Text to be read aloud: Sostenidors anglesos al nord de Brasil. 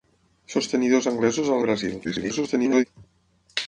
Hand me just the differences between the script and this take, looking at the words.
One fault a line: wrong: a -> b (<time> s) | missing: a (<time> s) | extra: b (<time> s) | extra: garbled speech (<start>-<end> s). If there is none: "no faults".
missing: nord (1.6 s)
extra: garbled speech (2.0-2.8 s)